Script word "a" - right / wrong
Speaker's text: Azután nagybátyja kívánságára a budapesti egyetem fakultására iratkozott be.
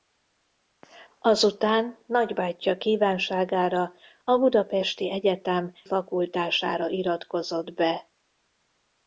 right